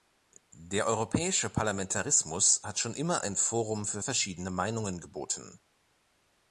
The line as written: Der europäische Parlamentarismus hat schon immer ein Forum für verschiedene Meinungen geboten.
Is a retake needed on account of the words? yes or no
no